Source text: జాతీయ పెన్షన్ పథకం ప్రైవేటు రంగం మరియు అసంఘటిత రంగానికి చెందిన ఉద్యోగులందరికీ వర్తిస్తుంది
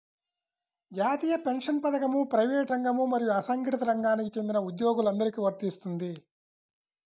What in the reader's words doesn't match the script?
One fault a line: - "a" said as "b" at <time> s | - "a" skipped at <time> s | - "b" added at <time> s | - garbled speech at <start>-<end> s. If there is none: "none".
none